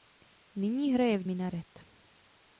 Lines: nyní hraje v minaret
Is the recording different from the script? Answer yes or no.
no